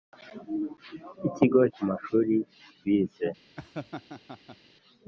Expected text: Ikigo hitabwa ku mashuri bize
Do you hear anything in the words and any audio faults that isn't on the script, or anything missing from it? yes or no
yes